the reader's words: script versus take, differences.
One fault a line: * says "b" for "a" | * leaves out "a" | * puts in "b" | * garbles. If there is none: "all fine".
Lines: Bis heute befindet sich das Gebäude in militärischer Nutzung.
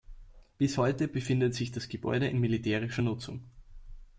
all fine